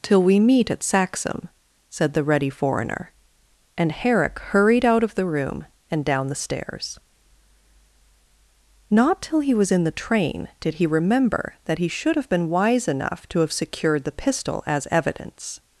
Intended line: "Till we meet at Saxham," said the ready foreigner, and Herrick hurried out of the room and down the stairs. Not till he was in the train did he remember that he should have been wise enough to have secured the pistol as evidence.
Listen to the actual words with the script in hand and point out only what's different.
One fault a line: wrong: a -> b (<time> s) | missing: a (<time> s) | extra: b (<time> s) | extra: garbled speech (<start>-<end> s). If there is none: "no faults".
no faults